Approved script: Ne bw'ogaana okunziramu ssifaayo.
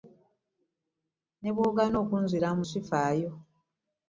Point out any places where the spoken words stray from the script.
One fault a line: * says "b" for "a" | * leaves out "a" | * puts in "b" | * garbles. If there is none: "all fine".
all fine